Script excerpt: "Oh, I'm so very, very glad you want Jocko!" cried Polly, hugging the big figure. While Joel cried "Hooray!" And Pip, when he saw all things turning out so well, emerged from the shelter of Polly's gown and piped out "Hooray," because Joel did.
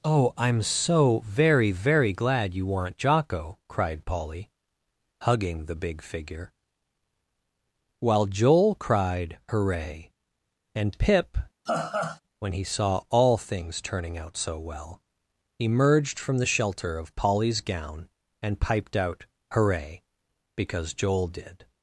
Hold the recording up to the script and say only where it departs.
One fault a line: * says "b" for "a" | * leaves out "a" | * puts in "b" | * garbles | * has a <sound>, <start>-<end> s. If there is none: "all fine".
* says "weren't" for "want"
* has a laugh, 11.7-12.2 s